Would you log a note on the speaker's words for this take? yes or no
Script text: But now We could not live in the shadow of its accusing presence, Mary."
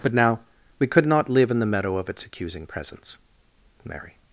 yes